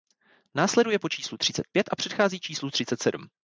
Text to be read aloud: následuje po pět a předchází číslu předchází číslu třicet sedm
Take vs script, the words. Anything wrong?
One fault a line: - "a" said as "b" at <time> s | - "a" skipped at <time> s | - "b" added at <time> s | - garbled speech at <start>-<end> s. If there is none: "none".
- "číslu třicet" added at 1.1 s
- "předchází číslu" skipped at 2.7 s